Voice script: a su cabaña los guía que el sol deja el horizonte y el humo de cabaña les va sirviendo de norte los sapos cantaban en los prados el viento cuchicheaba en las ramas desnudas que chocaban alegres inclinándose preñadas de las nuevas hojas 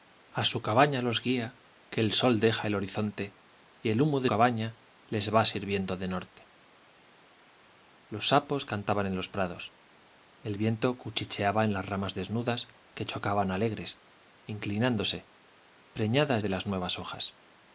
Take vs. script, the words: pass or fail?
pass